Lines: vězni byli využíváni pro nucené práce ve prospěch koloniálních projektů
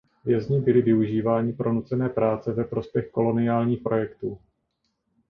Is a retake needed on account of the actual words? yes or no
no